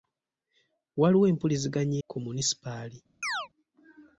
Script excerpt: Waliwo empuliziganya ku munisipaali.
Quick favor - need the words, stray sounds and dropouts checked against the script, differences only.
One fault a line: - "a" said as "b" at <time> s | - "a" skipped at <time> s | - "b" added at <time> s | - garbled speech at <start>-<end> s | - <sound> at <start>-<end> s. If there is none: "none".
- chirp at 3.2-3.5 s